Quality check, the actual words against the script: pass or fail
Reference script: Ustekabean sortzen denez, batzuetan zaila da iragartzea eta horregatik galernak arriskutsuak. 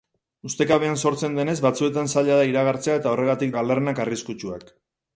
pass